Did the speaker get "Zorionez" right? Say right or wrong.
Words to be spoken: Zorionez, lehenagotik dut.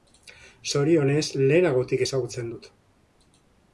right